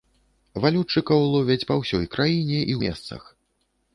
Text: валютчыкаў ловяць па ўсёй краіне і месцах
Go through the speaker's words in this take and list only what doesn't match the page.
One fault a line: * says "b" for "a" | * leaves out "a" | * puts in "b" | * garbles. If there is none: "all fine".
all fine